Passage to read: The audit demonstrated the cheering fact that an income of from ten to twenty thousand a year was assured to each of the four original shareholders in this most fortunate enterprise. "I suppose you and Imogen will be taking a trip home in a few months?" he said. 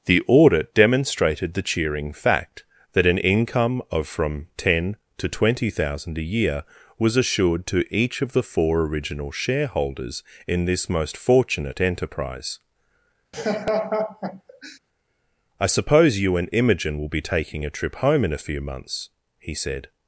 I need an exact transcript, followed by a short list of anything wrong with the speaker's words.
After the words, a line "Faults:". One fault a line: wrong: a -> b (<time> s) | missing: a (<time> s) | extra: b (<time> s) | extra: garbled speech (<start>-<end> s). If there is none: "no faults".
The audit demonstrated the cheering fact that an income of from ten to twenty thousand a year was assured to each of the four original shareholders in this most fortunate enterprise. "I suppose you and Imogen will be taking a trip home in a few months?" he said.
Faults:
no faults